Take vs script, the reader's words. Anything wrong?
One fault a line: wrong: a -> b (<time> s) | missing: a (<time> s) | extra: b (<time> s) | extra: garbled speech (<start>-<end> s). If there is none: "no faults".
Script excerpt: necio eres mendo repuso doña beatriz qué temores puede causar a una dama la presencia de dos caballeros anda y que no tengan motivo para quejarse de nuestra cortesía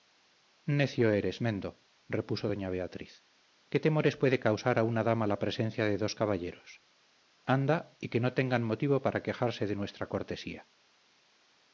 no faults